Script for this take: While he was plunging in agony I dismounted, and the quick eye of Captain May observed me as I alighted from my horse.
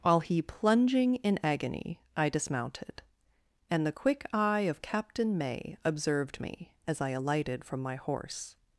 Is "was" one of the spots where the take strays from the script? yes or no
yes